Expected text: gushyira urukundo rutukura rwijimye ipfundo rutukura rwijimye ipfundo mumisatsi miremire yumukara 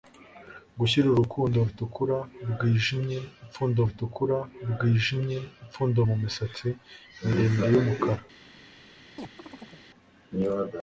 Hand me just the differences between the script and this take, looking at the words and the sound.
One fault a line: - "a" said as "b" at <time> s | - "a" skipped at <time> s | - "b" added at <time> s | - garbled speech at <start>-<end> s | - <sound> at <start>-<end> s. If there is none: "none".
- chirp at 9.2-9.9 s